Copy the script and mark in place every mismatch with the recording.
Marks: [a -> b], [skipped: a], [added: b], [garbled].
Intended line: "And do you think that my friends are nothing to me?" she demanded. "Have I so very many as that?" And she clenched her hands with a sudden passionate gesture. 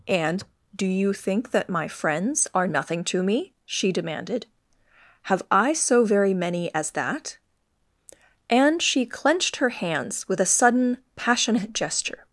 "And do you think that my friends are nothing to me?" she demanded. "Have I so very many as that?" And she clenched her hands with a sudden passionate gesture.